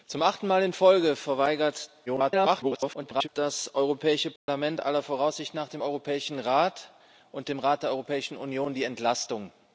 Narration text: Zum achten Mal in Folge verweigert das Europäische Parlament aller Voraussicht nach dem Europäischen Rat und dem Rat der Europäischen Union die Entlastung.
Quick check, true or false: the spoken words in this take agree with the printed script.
false